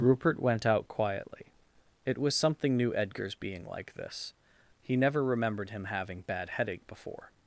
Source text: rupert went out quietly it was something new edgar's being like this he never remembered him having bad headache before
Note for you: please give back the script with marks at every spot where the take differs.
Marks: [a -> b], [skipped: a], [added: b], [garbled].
rupert went out quietly it was something new edgar's being like this he never remembered him having bad headache before